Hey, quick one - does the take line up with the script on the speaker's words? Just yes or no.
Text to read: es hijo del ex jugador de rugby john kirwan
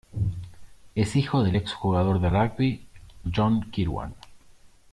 yes